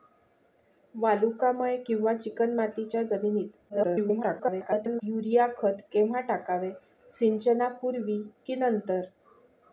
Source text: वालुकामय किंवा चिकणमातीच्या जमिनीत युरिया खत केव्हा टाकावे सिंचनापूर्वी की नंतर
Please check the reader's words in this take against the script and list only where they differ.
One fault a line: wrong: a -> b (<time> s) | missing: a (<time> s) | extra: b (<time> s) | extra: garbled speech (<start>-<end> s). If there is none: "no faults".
extra: garbled speech (3.7-5.0 s)